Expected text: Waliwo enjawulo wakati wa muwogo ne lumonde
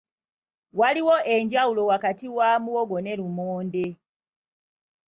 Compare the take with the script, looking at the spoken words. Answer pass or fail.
pass